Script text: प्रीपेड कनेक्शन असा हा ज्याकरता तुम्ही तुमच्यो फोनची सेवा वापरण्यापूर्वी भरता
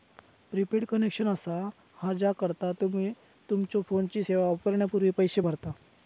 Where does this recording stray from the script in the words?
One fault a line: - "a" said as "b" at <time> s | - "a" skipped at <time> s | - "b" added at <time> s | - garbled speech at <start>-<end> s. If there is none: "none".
- "पैसो" added at 5.2 s